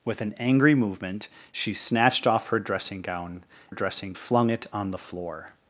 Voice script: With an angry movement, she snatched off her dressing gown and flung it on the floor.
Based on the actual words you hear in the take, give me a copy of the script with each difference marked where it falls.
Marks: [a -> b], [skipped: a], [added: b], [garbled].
With an angry movement, she snatched off her dressing gown [and -> dressing] flung it on the floor.